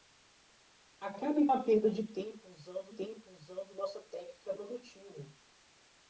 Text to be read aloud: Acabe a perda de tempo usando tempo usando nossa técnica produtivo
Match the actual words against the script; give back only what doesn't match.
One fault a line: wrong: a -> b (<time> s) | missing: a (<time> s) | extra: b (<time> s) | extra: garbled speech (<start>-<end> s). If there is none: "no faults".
no faults